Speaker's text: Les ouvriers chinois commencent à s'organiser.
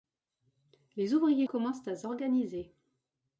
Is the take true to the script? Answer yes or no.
no